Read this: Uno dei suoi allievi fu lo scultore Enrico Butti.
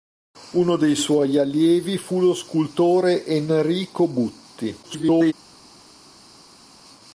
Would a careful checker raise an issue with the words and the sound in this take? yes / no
yes